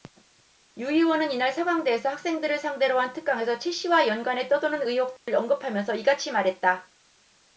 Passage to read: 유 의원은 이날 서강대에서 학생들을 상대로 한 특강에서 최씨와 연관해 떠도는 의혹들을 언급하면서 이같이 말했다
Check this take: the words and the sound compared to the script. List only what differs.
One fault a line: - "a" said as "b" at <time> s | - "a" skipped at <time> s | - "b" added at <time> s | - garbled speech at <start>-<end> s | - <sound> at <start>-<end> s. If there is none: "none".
- dropout at 5.2-5.3 s